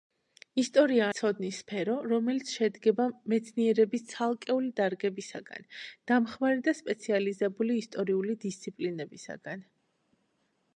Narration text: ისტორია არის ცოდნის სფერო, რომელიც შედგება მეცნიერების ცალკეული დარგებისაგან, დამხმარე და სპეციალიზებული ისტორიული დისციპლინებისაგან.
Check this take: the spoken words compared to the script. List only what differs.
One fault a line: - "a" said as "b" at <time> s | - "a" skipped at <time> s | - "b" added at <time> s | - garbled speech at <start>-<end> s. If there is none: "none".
- "არის" skipped at 1.1 s